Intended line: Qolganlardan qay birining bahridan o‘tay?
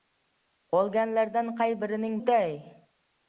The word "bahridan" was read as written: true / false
false